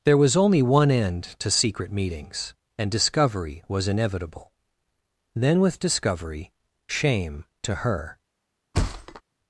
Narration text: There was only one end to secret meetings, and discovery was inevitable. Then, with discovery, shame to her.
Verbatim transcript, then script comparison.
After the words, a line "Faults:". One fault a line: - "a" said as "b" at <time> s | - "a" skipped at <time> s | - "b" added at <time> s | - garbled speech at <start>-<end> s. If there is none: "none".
There was only one end to secret meetings, and discovery was inevitable. Then, with discovery, shame to her.
Faults:
none